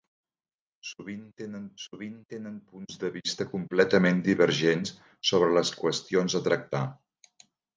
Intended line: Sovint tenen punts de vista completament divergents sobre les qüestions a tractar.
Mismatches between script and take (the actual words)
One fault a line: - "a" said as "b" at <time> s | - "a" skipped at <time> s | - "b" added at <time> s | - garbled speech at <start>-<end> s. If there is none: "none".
- "sovint tenen" added at 1.8 s